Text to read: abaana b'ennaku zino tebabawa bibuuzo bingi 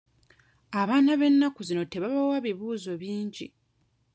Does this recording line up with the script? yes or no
yes